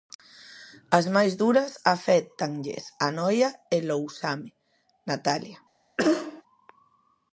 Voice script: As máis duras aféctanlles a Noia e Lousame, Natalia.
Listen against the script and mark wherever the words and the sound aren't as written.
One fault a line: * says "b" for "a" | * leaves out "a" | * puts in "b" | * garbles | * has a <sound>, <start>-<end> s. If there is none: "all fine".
* has a cough, 6.0-6.4 s